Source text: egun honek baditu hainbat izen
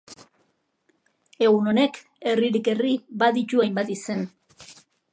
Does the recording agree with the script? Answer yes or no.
no